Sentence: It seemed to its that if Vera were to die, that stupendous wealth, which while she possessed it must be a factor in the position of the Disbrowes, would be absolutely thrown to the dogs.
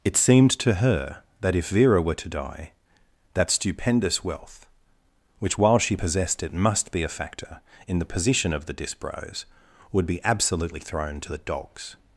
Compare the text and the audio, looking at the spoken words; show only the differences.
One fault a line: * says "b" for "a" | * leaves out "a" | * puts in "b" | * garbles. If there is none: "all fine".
* says "her" for "its"